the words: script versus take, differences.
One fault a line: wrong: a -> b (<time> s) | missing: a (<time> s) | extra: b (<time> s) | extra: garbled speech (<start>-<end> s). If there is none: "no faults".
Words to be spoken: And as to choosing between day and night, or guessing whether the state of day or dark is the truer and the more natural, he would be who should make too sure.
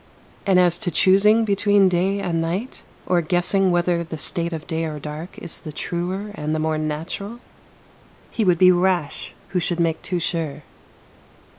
extra: rash (8.7 s)